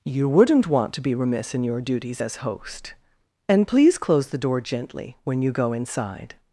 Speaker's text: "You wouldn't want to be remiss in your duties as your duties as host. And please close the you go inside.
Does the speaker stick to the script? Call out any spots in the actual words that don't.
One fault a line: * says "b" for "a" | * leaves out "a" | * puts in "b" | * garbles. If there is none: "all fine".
* leaves out "your duties as"
* puts in "door gently when"